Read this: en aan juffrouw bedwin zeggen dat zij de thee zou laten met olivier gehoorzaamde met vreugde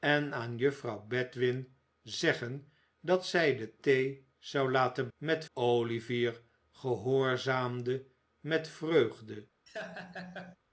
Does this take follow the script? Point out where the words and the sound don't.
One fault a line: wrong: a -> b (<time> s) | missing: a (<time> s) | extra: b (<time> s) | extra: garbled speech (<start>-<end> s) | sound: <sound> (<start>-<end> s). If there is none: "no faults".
sound: laugh (9.7-10.6 s)